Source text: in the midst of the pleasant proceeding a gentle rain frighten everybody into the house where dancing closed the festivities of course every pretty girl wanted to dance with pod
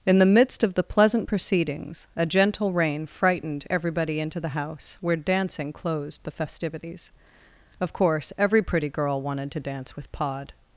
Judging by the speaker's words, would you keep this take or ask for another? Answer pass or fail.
fail